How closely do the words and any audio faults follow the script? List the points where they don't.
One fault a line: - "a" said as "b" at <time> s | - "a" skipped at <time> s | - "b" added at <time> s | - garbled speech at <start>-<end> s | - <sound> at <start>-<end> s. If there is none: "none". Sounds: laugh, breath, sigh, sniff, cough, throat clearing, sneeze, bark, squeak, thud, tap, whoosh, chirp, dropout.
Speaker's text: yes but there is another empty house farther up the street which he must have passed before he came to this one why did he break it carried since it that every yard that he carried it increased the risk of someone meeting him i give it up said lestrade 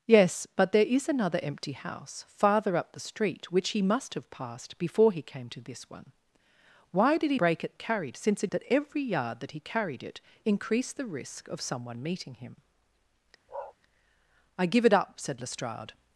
- bark at 13.5-13.8 s